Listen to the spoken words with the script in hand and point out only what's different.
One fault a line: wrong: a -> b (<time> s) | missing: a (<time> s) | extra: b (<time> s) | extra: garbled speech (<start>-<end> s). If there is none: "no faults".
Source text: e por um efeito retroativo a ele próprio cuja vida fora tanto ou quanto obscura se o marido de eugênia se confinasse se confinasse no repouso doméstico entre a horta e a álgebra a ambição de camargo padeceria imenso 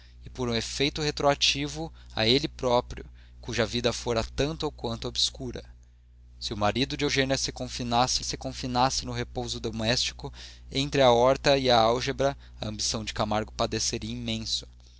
no faults